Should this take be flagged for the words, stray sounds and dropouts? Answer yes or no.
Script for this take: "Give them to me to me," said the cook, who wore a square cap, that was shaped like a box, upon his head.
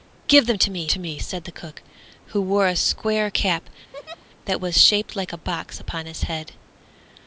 yes